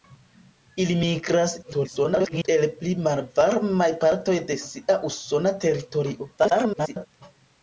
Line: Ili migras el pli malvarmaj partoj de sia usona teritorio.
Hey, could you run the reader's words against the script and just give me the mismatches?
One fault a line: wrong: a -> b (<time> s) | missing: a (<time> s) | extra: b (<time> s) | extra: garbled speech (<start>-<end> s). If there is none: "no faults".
extra: garbled speech (1.6-2.5 s)
extra: garbled speech (6.4-7.1 s)